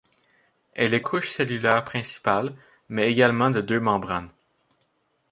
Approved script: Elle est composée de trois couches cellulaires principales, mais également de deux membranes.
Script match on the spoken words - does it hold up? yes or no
no